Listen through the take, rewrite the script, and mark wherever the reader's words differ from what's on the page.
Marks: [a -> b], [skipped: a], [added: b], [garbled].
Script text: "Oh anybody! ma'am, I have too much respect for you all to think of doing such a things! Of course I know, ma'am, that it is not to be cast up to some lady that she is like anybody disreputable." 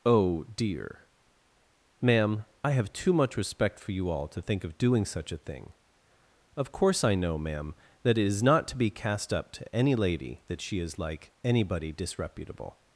"Oh [anybody! -> dear] ma'am, I have too much respect for you all to think of doing such a [things! -> thing] Of course I know, ma'am, that it is not to be cast up to [some -> any] lady that she is like anybody disreputable."